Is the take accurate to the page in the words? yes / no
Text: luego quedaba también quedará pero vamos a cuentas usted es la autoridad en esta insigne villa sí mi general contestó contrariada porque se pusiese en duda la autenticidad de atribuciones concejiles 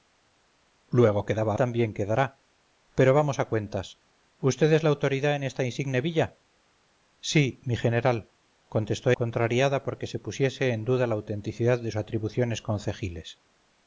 yes